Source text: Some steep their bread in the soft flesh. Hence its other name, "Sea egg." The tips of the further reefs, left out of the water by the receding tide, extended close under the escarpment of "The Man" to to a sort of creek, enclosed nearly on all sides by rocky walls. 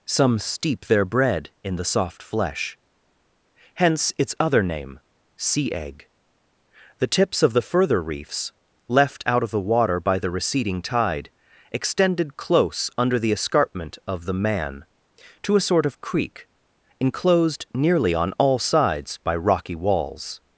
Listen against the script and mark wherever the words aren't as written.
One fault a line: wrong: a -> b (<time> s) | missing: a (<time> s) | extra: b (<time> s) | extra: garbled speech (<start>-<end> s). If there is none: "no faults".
missing: to (15.5 s)